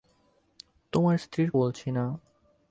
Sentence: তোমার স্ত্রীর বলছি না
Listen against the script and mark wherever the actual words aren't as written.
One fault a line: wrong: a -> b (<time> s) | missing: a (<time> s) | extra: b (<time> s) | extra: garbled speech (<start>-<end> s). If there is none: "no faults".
no faults